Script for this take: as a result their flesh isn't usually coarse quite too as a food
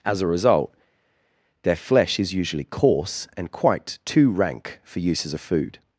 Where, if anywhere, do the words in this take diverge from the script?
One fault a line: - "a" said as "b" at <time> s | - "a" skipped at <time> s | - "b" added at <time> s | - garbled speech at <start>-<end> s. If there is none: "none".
- "isn't" said as "is" at 2.2 s
- "and" added at 3.4 s
- "rank for use" added at 4.3 s